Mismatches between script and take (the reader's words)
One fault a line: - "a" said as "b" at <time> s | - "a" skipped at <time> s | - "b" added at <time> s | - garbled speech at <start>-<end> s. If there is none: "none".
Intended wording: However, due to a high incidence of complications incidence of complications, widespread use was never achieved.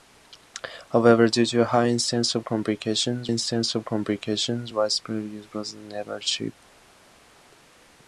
none